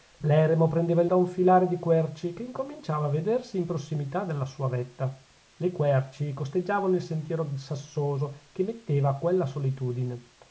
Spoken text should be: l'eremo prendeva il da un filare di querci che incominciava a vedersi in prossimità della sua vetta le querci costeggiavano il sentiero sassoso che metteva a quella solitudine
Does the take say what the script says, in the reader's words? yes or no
yes